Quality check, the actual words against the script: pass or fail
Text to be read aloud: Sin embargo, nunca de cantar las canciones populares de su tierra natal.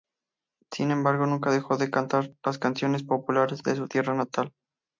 fail